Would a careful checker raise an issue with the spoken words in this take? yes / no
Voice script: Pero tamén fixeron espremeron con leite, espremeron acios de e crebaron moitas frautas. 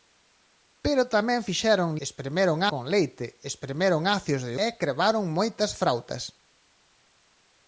no